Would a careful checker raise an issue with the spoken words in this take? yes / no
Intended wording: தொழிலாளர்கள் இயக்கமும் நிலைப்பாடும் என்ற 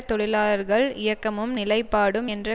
no